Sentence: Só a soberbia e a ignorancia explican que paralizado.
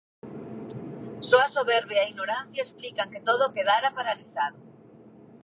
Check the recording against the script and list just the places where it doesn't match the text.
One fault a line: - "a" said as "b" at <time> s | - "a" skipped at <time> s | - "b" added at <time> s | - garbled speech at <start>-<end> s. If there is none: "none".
- "todo quedara" added at 3.2 s